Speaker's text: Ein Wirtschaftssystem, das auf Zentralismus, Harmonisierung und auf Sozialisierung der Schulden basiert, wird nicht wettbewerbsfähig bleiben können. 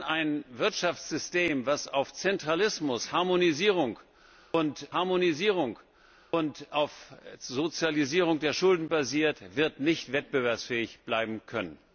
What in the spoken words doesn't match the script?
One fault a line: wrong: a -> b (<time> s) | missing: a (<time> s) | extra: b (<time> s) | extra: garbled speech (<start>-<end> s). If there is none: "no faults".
extra: Harmonisierung und (4.9 s)